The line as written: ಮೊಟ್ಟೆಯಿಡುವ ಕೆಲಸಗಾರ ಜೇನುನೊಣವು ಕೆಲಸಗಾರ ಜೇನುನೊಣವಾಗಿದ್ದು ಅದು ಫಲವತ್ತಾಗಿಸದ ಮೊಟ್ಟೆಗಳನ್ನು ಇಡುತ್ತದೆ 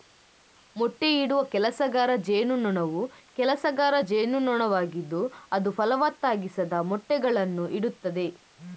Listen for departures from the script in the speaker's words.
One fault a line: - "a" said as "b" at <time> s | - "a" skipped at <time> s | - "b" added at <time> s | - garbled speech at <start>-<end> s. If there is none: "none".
none